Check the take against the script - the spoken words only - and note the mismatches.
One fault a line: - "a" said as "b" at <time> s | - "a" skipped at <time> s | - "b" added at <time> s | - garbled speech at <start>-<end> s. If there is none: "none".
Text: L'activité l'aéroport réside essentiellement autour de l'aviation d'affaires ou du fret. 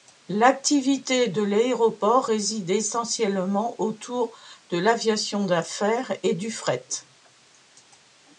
- "de" added at 1.3 s
- "ou" said as "et" at 6.2 s